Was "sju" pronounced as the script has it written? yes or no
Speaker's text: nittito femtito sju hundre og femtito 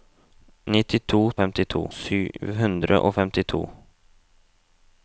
yes